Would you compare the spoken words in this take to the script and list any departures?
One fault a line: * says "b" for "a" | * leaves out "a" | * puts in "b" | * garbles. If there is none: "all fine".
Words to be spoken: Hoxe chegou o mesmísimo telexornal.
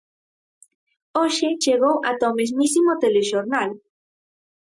* puts in "ata"